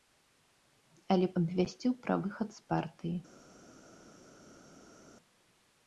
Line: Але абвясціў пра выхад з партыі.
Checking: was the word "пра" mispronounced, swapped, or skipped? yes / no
no